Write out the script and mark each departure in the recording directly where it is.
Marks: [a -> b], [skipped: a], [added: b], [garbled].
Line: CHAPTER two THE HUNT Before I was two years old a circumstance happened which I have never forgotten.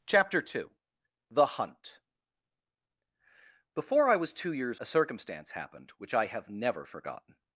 CHAPTER two THE HUNT Before I was two years [skipped: old] a circumstance happened which I have never forgotten.